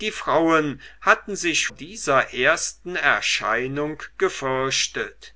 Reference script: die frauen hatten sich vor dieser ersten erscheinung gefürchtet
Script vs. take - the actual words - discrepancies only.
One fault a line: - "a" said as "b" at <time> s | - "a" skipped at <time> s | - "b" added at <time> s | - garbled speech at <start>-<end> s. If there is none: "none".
- "vor" skipped at 1.7 s